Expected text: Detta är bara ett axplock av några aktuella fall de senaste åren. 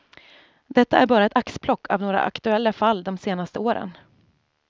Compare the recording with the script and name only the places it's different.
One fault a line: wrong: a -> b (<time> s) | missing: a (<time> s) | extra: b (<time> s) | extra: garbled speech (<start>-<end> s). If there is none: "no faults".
no faults